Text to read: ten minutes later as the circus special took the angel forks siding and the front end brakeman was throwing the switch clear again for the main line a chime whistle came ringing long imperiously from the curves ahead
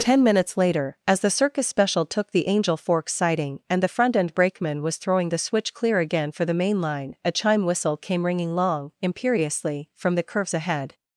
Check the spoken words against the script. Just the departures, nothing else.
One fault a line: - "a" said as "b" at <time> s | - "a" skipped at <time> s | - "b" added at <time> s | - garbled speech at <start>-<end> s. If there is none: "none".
none